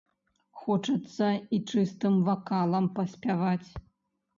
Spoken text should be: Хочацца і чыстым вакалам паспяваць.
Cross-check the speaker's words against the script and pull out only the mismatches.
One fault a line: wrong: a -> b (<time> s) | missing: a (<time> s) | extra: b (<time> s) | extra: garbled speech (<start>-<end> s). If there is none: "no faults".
no faults